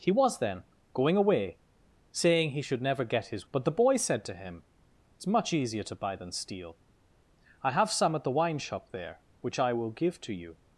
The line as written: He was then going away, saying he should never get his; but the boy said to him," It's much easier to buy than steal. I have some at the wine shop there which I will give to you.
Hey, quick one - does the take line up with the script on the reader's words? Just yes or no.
yes